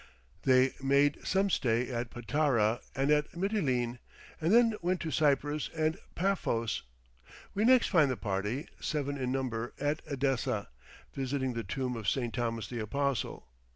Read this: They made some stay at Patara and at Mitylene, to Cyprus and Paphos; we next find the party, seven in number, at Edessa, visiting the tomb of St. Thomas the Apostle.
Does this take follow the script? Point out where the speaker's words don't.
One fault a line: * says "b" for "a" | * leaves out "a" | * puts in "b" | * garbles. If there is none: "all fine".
* puts in "and then went"